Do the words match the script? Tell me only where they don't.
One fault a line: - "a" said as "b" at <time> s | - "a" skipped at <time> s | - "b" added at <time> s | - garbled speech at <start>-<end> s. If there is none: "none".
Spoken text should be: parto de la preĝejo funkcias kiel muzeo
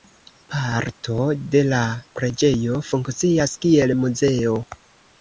none